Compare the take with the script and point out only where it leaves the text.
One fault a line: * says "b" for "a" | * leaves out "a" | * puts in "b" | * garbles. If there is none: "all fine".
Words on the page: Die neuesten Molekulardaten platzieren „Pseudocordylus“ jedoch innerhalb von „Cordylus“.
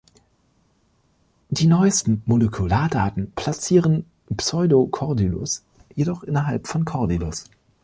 all fine